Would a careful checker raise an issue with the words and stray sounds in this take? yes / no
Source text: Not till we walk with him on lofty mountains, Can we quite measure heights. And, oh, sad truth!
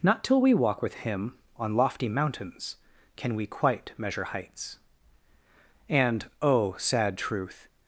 no